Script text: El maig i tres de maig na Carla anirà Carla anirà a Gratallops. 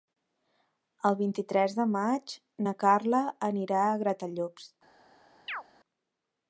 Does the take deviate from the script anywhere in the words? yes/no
yes